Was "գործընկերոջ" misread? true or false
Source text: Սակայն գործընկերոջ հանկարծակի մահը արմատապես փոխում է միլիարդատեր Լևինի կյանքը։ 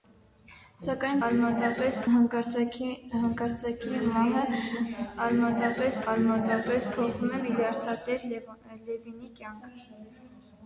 true